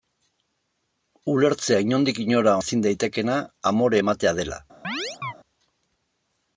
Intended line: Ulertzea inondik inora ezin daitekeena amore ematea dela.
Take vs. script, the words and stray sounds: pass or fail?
fail